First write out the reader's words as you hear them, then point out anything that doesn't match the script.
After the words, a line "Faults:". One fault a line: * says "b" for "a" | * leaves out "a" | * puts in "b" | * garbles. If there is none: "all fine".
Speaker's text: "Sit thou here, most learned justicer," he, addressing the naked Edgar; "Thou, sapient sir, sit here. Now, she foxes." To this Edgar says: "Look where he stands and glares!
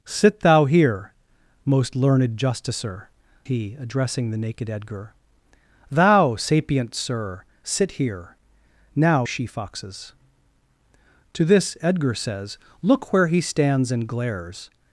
"Sit thou here, most learned justicer," he, addressing the naked Edgar; "Thou, sapient sir, sit here. Now, she foxes." To this Edgar says: "Look where he stands and glares!
Faults:
all fine